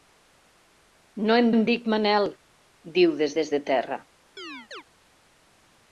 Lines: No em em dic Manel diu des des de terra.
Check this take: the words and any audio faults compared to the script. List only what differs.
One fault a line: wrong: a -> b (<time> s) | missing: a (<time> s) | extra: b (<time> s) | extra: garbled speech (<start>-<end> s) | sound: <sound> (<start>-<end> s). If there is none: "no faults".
sound: chirp (4.4-4.8 s)